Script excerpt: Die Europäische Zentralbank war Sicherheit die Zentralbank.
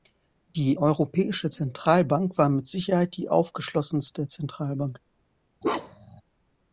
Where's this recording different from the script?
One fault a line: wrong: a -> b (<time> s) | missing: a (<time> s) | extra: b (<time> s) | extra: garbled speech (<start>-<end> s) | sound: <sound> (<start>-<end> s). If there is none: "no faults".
extra: mit (2.5 s)
extra: aufgeschlossenste (3.3 s)
sound: bark (5.6-6.2 s)